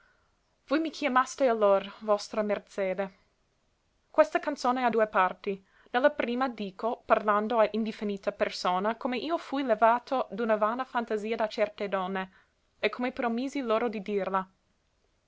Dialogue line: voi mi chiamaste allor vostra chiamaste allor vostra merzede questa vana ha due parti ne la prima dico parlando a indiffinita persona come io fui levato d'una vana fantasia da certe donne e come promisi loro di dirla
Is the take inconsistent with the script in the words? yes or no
yes